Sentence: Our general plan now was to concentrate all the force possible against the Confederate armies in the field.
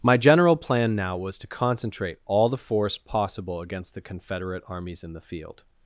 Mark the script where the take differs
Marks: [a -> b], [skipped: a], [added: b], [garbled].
[Our -> My] general plan now was to concentrate all the force possible against the Confederate armies in the field.